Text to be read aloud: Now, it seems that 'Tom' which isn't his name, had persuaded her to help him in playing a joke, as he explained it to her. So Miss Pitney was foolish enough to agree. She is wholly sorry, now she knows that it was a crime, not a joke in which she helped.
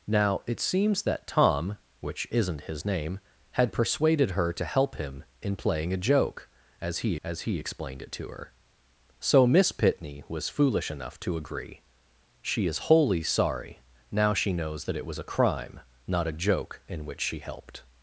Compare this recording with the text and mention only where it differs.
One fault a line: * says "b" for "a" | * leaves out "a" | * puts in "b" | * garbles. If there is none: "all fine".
* puts in "as he"